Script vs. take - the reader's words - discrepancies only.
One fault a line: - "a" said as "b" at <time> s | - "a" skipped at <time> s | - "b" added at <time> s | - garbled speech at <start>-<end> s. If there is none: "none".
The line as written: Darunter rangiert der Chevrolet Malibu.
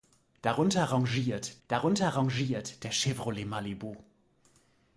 - "darunter rangiert" added at 1.7 s